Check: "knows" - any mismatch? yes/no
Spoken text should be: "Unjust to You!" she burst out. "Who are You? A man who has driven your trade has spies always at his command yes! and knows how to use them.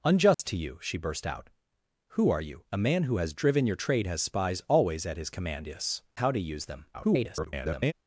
yes